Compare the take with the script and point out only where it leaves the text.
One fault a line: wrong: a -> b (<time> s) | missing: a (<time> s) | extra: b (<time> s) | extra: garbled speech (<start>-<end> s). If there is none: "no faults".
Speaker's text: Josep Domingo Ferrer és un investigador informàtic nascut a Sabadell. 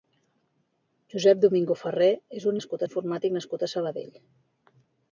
wrong: investigador -> nascut (2.6 s)